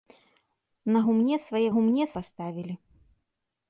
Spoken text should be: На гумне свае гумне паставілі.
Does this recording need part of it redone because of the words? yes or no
no